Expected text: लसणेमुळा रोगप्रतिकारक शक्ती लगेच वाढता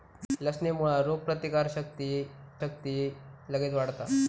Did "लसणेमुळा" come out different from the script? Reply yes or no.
no